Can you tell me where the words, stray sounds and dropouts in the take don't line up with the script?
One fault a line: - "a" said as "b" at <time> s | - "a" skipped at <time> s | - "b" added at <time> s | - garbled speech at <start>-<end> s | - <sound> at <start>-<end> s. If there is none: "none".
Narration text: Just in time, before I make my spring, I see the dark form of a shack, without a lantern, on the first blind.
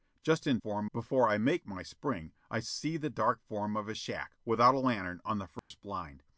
- "time" said as "form" at 0.6 s
- dropout at 5.6-5.7 s